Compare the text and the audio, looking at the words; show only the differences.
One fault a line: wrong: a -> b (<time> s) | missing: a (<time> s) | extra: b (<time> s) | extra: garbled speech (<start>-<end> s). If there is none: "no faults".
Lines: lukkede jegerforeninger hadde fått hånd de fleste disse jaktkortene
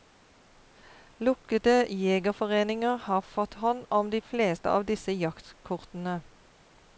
wrong: hadde -> har (3.0 s)
extra: om (3.9 s)
extra: av (4.7 s)